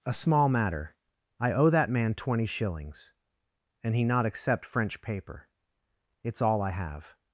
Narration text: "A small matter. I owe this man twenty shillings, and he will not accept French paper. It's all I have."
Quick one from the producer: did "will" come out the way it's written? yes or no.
no